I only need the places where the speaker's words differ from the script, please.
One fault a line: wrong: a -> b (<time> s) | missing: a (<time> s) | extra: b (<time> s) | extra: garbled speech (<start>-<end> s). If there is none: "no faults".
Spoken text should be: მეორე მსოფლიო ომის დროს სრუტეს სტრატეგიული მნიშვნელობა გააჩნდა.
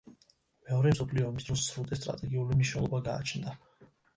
no faults